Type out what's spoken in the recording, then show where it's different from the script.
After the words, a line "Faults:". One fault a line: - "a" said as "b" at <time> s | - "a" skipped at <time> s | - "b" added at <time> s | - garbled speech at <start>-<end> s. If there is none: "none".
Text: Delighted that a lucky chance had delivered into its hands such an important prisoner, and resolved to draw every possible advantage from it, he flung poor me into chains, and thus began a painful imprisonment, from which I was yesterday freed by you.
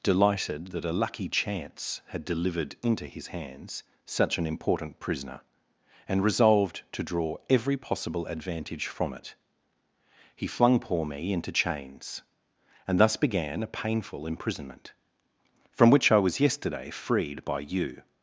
Delighted that a lucky chance had delivered into his hands such an important prisoner, and resolved to draw every possible advantage from it, he flung poor me into chains, and thus began a painful imprisonment, from which I was yesterday freed by you.
Faults:
- "its" said as "his" at 3.0 s